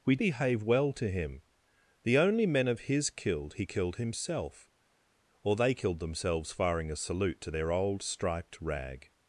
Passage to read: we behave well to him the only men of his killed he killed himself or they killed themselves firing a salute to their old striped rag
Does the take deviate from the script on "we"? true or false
false